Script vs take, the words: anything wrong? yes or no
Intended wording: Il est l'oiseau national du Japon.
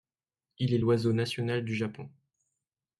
no